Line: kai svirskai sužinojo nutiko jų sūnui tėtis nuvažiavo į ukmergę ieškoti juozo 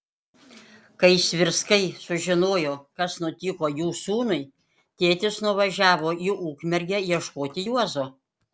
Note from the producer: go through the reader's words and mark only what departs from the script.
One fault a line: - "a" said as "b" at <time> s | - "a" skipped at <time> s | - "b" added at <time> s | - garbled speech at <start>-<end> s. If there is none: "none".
- "kas" added at 3.0 s